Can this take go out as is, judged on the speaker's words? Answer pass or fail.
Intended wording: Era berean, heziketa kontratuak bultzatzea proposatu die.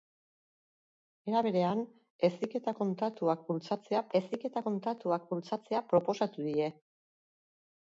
fail